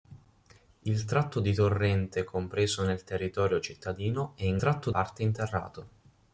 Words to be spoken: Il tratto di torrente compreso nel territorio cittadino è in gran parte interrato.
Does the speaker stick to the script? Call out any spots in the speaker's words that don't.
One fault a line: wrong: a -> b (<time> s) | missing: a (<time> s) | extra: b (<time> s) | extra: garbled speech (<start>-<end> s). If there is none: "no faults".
wrong: gran -> tratto (4.6 s)